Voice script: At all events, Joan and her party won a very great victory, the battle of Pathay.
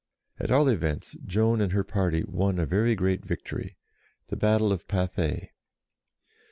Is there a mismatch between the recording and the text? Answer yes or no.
no